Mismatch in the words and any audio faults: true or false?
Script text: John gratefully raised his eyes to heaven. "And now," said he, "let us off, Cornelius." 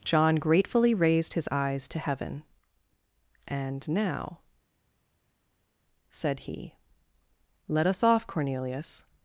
false